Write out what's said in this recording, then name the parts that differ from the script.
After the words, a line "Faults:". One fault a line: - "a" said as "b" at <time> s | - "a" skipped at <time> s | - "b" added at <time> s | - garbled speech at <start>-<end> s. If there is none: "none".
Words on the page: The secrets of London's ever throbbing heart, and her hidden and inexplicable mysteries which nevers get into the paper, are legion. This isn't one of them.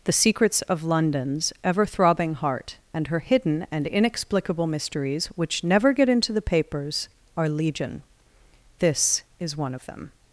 The secrets of London's ever throbbing heart, and her hidden and inexplicable mysteries which never get into the papers, are legion. This is one of them.
Faults:
- "nevers" said as "never" at 5.6 s
- "paper" said as "papers" at 6.4 s
- "isn't" said as "is" at 9.4 s